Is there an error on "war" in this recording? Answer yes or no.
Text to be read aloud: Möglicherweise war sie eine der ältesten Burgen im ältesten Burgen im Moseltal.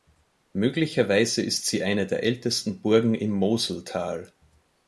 yes